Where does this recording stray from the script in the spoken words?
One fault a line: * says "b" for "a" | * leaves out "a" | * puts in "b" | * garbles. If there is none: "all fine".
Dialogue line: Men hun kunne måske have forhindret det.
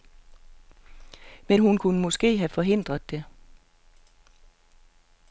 all fine